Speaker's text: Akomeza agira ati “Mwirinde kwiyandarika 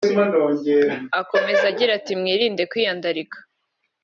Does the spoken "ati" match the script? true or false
true